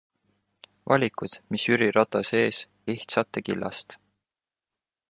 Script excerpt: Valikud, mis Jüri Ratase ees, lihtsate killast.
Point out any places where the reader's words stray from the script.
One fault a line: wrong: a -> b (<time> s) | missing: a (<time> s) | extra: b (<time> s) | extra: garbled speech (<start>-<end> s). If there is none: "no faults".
no faults